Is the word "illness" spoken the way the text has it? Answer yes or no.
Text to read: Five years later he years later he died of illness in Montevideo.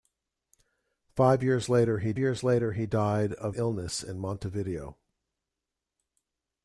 yes